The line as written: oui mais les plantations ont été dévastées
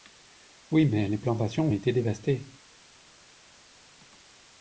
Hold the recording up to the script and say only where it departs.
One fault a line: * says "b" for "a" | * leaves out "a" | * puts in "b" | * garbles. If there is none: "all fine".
all fine